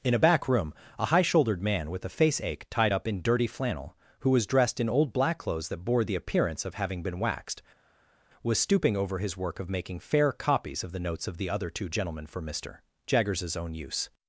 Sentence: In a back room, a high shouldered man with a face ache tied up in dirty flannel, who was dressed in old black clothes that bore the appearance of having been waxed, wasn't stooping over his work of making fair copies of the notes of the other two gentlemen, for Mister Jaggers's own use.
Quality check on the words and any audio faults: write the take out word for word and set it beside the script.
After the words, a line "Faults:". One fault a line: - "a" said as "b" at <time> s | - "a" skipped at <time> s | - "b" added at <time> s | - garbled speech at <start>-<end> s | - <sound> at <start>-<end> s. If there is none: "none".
In a back room, a high shouldered man with a face ache tied up in dirty flannel, who was dressed in old black clothes that bore the appearance of having been waxed, was stooping over his work of making fair copies of the notes of the other two gentlemen, for Mister Jaggers's own use.
Faults:
- "wasn't" said as "was" at 8.4 s